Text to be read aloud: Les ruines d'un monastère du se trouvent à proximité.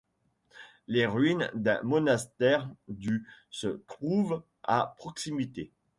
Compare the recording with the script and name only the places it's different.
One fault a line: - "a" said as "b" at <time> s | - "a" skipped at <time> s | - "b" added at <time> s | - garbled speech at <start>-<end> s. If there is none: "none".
none